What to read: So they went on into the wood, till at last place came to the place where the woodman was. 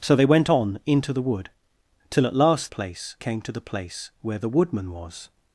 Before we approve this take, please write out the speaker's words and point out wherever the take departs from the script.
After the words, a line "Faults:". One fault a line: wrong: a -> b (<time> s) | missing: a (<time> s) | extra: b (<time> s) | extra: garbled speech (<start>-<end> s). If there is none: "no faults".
So they went on into the wood, till at last place came to the place where the woodman was.
Faults:
no faults